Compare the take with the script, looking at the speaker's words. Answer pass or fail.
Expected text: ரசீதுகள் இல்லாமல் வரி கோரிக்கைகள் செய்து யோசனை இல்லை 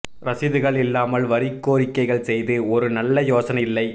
fail